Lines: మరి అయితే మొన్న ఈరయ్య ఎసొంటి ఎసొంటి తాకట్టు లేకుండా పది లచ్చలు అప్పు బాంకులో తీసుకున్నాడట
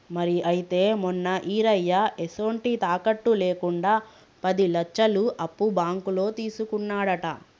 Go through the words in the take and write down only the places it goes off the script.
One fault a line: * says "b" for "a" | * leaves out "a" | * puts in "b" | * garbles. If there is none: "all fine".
* leaves out "ఎసొంటి"